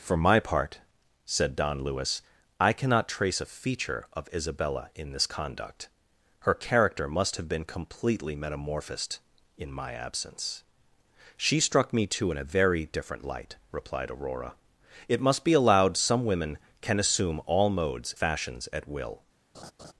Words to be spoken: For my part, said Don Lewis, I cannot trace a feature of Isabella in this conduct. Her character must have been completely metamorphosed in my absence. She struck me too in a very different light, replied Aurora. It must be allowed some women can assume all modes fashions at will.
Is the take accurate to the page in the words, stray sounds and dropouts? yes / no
no